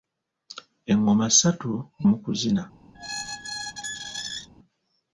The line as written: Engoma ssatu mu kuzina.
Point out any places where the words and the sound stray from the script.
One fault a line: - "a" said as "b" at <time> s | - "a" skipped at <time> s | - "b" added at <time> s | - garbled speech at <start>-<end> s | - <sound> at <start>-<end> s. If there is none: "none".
- squeak at 2.9-4.5 s